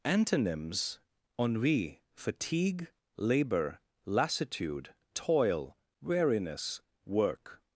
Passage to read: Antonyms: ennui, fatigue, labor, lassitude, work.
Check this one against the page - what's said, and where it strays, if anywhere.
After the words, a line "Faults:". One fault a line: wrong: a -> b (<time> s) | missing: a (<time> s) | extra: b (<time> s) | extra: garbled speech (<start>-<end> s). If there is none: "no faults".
Antonyms: ennui, fatigue, labor, lassitude, toil, weariness, work.
Faults:
extra: toil weariness (5.1 s)